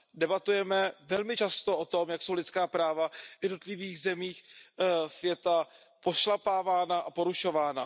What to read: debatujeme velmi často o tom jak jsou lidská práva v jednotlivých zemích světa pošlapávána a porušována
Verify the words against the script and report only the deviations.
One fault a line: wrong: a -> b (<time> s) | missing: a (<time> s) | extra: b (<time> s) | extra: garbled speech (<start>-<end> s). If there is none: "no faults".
no faults